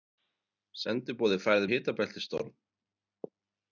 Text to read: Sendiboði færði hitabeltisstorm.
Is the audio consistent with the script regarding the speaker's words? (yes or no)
yes